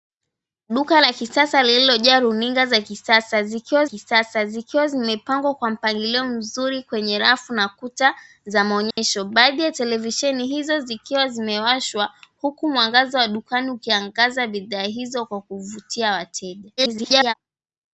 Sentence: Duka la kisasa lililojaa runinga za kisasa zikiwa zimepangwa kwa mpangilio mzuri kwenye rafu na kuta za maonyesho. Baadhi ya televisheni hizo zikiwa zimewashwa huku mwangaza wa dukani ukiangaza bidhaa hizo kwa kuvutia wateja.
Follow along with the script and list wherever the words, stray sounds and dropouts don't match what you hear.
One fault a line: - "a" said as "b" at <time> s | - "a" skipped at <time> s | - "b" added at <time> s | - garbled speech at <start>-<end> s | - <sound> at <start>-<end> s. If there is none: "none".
- "kisasa zikiwa" added at 3.8 s
- dropout at 8.9-9.0 s
- garbled speech at 16.8-17.3 s